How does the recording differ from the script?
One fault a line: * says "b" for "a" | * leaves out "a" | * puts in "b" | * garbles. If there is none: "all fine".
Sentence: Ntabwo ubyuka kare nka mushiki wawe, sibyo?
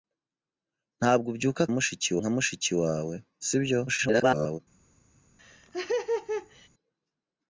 * says "mushiki" for "kare"
* garbles